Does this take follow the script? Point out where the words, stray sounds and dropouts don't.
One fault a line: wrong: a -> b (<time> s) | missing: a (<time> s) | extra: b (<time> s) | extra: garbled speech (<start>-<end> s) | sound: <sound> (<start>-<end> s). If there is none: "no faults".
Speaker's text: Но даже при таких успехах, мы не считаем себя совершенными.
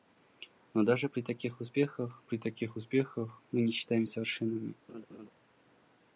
extra: при таких успехах (2.2 s)
missing: себя (4.1 s)
sound: laugh (4.9-5.3 s)